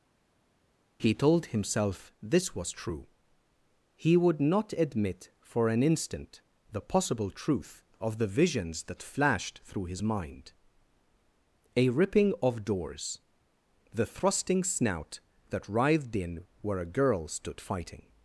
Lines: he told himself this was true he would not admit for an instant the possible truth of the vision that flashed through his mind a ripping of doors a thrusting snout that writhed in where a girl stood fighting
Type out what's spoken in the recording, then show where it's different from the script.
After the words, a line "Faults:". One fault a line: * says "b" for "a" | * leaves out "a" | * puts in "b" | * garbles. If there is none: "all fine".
he told himself this was true he would not admit for an instant the possible truth of the visions that flashed through his mind a ripping of doors the thrusting snout that writhed in where a girl stood fighting
Faults:
* says "visions" for "vision"
* says "the" for "a"